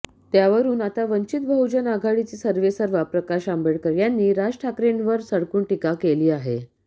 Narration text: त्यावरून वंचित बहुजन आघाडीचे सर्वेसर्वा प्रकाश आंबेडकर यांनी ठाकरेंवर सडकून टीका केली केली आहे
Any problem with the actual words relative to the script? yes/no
yes